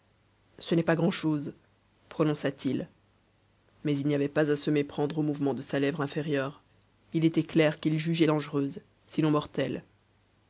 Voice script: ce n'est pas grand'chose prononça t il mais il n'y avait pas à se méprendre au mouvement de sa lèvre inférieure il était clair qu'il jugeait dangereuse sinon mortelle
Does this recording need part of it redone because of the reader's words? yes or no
no